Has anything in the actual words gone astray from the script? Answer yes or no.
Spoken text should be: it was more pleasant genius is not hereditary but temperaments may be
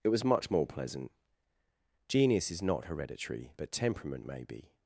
yes